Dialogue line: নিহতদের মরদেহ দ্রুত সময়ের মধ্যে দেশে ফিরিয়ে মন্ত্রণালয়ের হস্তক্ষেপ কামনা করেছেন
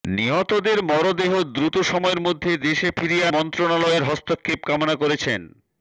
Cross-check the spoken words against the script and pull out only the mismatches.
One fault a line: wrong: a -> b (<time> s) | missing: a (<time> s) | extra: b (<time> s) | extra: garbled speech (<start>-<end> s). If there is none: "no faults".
no faults